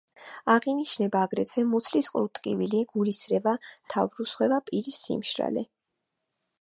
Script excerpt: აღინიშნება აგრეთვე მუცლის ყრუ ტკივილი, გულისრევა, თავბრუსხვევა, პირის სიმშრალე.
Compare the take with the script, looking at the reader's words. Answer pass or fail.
pass